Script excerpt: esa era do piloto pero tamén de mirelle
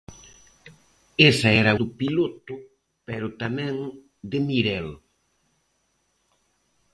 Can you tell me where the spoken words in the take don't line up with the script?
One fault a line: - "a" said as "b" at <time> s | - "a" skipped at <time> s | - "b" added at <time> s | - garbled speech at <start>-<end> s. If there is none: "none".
none